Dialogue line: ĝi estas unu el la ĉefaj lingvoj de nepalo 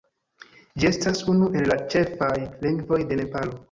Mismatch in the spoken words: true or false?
false